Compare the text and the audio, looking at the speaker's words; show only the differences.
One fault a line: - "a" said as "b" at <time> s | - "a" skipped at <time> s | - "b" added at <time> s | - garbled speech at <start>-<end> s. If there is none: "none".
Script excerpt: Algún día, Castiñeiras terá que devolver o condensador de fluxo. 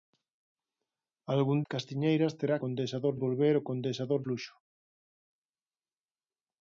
- "día" skipped at 1.6 s
- "que" said as "condensador" at 2.6 s
- "de" skipped at 4.2 s